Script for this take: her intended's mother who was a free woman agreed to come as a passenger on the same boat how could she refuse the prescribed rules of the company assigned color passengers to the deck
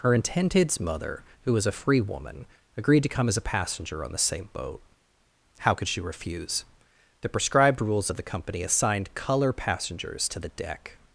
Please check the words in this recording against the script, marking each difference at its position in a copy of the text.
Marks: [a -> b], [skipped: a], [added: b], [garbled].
her intended's mother who was a free woman agreed to come as a passenger on the same boat how could she refuse the prescribed rules of the company assigned color passengers to the deck